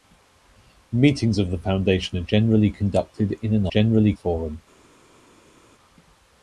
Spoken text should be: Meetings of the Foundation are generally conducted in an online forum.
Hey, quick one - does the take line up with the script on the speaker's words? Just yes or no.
no